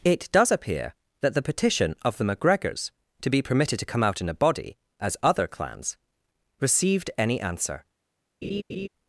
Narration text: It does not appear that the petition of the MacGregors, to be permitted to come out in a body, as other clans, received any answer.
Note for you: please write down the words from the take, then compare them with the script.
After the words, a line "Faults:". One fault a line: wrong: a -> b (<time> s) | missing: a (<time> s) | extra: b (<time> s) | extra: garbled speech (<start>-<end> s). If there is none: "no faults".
It does appear that the petition of the MacGregors, to be permitted to come out in a body, as other clans, received any answer.
Faults:
missing: not (0.5 s)